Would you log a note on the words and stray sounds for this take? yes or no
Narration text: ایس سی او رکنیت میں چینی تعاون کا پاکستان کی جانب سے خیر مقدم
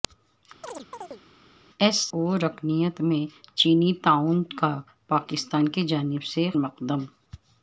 yes